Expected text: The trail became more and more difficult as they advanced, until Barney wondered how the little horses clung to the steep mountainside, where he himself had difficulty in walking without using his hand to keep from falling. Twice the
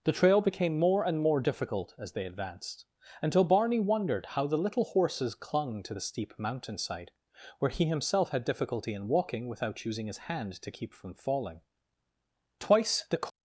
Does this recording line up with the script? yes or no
yes